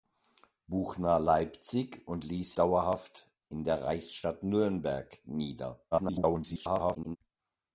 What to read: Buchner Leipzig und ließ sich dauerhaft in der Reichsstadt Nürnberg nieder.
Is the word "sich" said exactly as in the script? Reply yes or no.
no